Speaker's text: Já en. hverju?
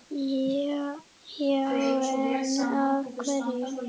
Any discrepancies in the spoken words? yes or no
yes